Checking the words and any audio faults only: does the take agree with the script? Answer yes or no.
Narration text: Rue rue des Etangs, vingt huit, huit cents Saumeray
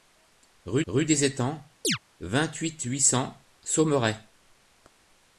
no